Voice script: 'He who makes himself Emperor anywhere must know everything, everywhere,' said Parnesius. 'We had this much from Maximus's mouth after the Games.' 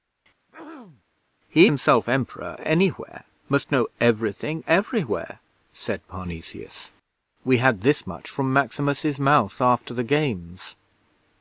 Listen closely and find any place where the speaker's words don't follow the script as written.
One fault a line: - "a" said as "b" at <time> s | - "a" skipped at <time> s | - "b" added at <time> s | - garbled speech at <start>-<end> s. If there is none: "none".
- "who makes" skipped at 1.7 s